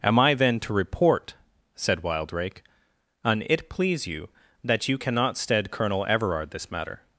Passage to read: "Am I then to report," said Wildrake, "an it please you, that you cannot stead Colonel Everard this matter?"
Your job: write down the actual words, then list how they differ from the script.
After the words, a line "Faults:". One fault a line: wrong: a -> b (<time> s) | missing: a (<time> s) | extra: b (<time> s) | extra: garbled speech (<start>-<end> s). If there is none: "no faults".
"Am I then to report," said Wildrake, "an it please you, that you cannot stead Colonel Everard this matter?"
Faults:
no faults